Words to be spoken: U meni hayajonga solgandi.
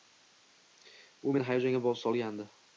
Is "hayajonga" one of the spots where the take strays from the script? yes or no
no